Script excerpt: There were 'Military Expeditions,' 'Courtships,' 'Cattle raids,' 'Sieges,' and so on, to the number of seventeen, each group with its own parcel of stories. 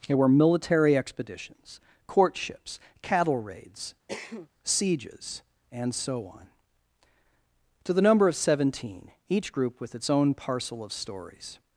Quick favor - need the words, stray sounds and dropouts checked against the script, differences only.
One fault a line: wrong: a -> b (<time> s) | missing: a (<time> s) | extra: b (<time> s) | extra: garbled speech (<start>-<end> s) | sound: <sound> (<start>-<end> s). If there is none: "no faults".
sound: cough (4.1-4.5 s)